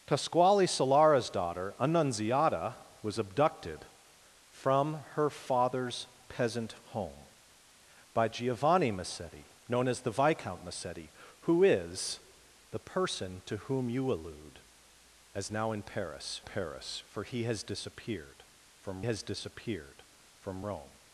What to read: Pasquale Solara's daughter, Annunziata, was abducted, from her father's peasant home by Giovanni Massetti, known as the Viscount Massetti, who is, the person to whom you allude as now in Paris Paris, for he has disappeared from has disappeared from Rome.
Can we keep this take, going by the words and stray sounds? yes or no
yes